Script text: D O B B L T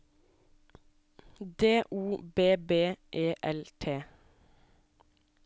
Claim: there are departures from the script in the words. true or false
true